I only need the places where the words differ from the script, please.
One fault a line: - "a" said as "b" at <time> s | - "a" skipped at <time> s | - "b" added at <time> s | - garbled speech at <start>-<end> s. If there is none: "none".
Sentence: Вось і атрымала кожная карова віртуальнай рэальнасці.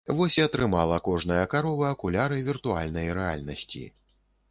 - "акуляры" added at 1.9 s